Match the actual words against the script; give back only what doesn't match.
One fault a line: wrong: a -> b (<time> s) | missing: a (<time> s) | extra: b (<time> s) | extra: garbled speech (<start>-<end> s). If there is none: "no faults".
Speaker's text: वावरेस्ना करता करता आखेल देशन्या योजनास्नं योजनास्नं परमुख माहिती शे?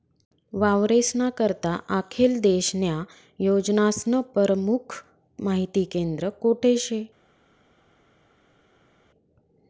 missing: करता (1.8 s)
missing: योजनास्नं (4.2 s)
extra: केंद्र कोठे (5.8 s)